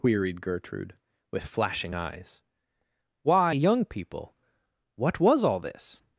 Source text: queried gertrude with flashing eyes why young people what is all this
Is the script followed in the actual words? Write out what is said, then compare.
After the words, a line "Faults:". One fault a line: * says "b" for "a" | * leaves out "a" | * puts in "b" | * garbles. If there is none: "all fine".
queried gertrude with flashing eyes why young people what was all this
Faults:
* says "was" for "is"